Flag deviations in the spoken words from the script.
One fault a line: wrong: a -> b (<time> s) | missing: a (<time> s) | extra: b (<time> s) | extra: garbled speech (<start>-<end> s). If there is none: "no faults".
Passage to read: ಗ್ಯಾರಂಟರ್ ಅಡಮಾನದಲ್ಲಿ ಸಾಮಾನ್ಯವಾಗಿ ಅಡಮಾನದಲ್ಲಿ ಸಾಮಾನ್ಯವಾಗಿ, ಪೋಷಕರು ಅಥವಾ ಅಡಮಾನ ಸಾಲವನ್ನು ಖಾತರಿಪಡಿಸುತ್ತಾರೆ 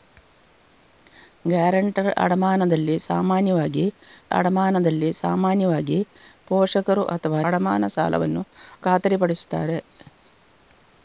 no faults